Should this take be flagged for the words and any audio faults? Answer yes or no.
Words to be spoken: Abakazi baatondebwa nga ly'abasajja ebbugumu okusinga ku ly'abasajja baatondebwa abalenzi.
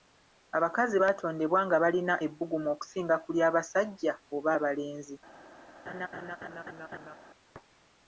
yes